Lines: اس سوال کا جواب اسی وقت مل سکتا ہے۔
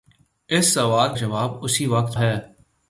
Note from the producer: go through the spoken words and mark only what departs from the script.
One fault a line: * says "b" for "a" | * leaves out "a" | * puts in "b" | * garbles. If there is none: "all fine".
* leaves out "کا"
* leaves out "مل سکتا"